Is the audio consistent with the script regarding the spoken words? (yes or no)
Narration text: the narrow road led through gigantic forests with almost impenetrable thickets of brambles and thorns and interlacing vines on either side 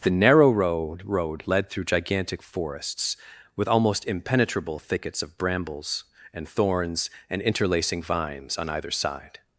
no